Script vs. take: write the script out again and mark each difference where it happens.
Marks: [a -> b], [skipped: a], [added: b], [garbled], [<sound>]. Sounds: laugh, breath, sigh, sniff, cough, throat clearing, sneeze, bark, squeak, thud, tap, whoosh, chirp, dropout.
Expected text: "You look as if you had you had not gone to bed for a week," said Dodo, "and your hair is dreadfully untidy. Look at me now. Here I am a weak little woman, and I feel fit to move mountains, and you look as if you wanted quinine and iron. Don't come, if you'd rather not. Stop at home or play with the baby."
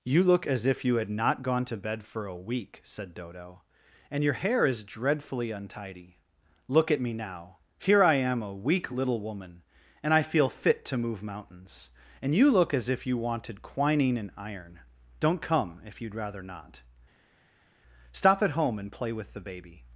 "You look as if you had [skipped: you had] not gone to bed for a week," said Dodo, "and your hair is dreadfully untidy. Look at me now. Here I am a weak little woman, and I feel fit to move mountains, and you look as if you wanted quinine and iron. Don't come, if you'd rather not. Stop at home [or -> and] play with the baby."